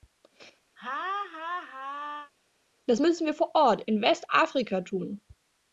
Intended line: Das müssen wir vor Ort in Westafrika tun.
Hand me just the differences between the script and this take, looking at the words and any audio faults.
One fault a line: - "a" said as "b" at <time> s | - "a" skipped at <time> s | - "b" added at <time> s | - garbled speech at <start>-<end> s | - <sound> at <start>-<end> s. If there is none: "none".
- laugh at 0.8-2.3 s